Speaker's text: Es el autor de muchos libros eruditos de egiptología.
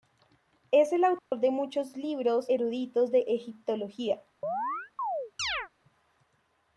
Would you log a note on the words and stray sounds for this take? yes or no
yes